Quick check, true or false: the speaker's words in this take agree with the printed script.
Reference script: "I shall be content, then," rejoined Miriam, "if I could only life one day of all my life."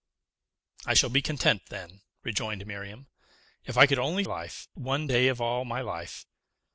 true